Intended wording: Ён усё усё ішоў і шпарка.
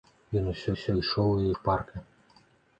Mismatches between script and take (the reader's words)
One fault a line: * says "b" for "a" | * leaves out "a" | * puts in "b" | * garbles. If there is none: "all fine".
all fine